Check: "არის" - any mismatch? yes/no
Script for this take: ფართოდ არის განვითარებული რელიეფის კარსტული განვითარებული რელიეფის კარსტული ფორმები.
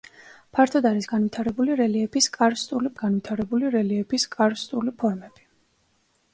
no